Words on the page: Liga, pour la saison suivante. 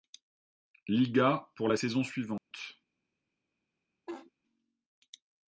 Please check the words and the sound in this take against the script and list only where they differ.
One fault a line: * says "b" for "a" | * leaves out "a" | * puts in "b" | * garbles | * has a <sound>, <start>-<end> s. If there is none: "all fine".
* has a dropout, 2.4-2.5 s
* has a laugh, 4.1-4.3 s